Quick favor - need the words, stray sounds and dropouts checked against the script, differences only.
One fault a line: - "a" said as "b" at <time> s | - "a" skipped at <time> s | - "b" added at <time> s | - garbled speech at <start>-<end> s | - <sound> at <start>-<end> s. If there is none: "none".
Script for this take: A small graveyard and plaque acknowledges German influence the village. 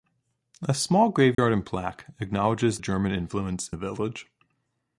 - dropout at 1.3-1.4 s